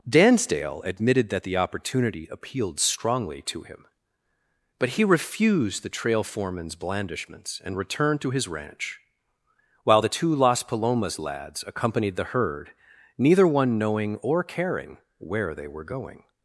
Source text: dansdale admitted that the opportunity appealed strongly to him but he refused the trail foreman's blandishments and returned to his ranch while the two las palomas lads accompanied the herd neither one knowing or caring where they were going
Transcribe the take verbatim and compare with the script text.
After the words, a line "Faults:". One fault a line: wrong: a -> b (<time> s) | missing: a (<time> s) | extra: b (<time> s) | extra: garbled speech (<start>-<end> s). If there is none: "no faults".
dansdale admitted that the opportunity appealed strongly to him but he refused the trail foreman's blandishments and returned to his ranch while the two las palomas lads accompanied the herd neither one knowing or caring where they were going
Faults:
no faults